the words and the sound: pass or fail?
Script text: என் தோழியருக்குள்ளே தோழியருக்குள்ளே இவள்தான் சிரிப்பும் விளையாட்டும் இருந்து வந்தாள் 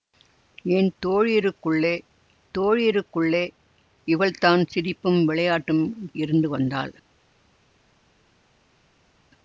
pass